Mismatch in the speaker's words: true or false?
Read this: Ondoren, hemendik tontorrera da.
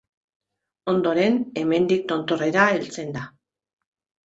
true